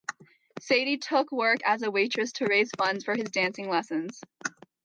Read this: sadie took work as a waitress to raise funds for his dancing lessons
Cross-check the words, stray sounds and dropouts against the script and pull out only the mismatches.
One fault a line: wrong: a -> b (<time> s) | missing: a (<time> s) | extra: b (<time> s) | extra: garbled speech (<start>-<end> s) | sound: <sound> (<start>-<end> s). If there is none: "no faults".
no faults